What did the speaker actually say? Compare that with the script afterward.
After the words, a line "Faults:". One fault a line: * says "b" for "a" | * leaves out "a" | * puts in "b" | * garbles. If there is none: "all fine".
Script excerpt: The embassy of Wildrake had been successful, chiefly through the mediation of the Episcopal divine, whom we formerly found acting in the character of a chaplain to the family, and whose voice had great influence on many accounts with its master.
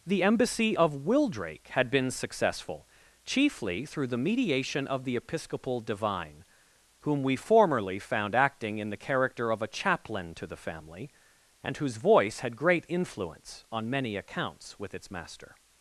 The embassy of Wildrake had been successful, chiefly through the mediation of the Episcopal divine, whom we formerly found acting in the character of a chaplain to the family, and whose voice had great influence on many accounts with its master.
Faults:
all fine